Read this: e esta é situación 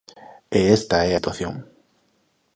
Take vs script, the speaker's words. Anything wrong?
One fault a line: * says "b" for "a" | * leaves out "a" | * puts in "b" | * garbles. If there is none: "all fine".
all fine